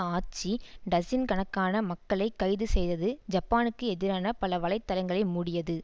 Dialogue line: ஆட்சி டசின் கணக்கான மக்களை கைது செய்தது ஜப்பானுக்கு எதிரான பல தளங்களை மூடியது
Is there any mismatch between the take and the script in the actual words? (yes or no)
yes